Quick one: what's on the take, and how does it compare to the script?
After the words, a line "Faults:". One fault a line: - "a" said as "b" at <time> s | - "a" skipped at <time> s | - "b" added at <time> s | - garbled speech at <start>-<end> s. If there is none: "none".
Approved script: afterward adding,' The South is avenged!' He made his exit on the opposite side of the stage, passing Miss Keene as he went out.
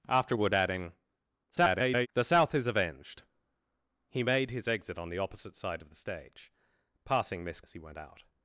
afterward adding,' [garbled] The South is avenged!' He made his exit on the opposite side of the stage, passing Miss As he went out.
Faults:
- garbled speech at 1.5-2.1 s
- "Keene" skipped at 7.6 s